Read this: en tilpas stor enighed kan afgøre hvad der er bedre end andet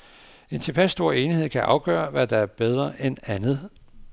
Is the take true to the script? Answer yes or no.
yes